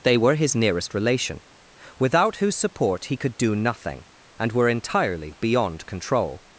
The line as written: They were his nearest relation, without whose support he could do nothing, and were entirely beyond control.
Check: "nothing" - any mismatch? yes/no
no